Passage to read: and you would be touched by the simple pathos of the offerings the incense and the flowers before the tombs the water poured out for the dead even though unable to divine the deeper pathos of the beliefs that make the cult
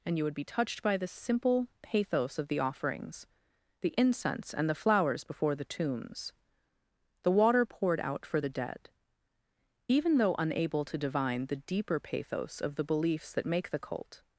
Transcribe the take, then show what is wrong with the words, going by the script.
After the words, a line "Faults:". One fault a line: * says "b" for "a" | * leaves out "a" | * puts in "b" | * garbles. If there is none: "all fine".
and you would be touched by the simple pathos of the offerings the incense and the flowers before the tombs the water poured out for the dead even though unable to divine the deeper pathos of the beliefs that make the cult
Faults:
all fine